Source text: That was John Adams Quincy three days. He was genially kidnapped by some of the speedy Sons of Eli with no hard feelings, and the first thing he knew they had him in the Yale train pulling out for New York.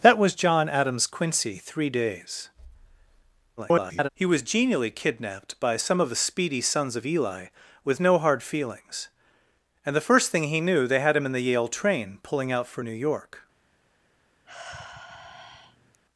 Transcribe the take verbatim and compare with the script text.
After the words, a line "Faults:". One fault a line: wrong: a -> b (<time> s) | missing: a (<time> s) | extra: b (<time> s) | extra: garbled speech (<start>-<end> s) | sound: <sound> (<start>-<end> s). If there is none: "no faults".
That was John Adams Quincy three days. [garbled] He was genially kidnapped by some of the speedy Sons of Eli with no hard feelings, and the first thing he knew they had him in the Yale train pulling out for New York.
Faults:
extra: garbled speech (3.6-4.1 s)
sound: sigh (14.4-16.0 s)